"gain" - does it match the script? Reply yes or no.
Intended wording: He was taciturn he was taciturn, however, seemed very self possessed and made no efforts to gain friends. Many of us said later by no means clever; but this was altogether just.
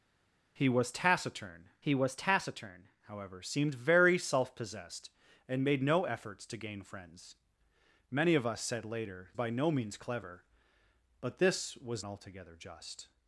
yes